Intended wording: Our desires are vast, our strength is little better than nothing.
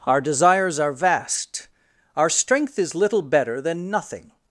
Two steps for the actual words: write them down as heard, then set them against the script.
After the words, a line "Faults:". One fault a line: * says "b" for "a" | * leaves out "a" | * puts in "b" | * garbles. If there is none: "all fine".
Our desires are vast, our strength is little better than nothing.
Faults:
all fine